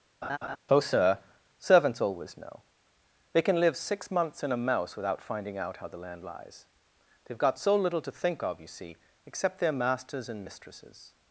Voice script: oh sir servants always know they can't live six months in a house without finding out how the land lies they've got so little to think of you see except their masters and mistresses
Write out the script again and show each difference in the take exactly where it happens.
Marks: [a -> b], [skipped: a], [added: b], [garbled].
oh sir servants always know they [can't -> can] live six months in a [house -> mouse] without finding out how the land lies they've got so little to think of you see except their masters and mistresses